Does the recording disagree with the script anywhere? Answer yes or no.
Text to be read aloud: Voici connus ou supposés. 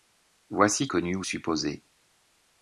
no